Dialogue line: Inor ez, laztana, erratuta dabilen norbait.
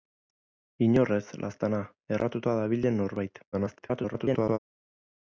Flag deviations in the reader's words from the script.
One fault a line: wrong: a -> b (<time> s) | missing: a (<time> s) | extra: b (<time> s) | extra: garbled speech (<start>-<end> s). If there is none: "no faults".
extra: garbled speech (3.5-4.6 s)